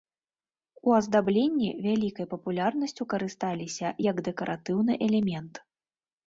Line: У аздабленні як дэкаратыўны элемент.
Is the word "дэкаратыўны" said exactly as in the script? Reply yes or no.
yes